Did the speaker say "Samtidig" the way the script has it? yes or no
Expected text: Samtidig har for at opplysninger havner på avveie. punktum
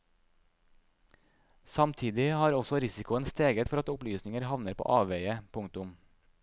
yes